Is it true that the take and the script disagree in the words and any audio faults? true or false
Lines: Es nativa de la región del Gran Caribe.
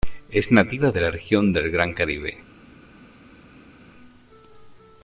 false